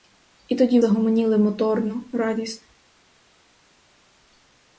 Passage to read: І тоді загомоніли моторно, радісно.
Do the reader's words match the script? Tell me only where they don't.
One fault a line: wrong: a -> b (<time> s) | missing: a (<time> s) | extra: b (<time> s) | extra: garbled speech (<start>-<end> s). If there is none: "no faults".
no faults